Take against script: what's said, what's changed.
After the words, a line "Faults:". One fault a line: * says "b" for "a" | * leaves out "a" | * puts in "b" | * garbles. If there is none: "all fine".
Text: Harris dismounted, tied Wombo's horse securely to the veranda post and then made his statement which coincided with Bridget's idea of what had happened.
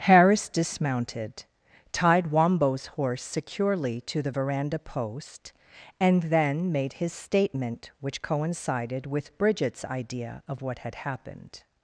Harris dismounted, tied Wombo's horse securely to the veranda post and then made his statement which coincided with Bridget's idea of what had happened.
Faults:
all fine